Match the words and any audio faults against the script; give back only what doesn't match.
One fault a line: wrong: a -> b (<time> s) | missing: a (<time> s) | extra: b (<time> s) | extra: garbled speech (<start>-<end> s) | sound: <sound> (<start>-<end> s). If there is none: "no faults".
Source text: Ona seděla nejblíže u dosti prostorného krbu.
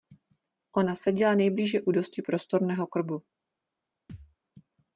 sound: thud (4.1-4.4 s)